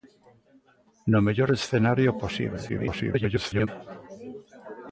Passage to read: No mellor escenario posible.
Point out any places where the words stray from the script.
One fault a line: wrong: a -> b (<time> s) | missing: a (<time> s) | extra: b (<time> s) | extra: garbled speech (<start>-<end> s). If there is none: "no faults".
extra: garbled speech (2.7-3.7 s)